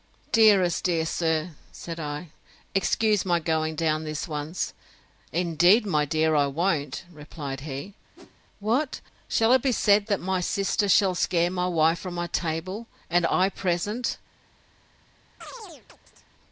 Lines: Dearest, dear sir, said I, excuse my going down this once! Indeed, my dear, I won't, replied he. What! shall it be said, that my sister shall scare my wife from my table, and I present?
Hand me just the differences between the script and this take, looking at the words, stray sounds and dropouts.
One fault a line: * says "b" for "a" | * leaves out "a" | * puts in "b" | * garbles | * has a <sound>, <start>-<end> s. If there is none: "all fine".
* has a whoosh, 8.2-8.4 s
* has a chirp, 15.4-16.3 s